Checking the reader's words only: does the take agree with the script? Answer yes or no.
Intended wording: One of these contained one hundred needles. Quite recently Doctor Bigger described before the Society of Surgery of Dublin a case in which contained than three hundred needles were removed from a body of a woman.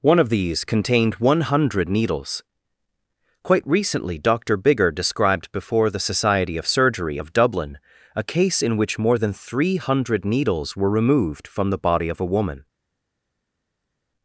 no